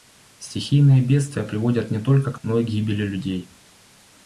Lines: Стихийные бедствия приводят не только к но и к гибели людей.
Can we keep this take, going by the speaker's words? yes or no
yes